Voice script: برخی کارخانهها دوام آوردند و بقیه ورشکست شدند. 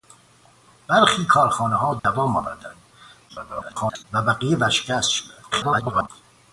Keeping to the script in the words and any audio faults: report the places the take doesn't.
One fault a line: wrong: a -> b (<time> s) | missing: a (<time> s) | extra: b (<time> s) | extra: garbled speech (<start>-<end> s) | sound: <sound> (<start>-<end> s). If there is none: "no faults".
sound: dropout (2.0-2.0 s)
extra: garbled speech (3.3-4.0 s)
extra: garbled speech (5.5-6.1 s)